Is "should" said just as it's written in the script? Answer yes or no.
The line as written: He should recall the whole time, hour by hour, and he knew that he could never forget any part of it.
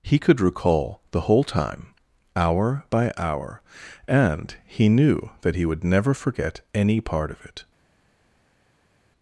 no